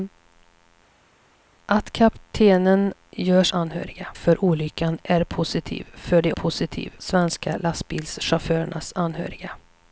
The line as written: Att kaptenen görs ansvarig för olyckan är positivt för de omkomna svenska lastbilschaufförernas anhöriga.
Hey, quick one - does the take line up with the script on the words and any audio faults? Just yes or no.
no